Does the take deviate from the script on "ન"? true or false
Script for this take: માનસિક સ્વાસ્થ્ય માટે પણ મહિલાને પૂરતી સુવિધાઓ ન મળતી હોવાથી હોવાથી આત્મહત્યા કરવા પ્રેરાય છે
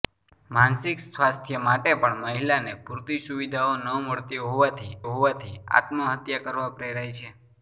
false